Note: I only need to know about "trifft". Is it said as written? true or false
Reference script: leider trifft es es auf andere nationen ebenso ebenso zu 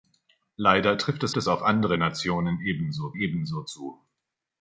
true